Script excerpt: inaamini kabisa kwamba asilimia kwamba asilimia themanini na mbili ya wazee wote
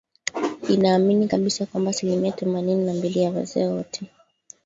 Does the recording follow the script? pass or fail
fail